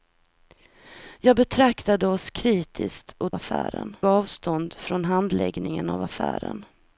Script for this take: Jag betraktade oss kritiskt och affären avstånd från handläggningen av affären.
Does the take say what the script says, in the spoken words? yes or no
yes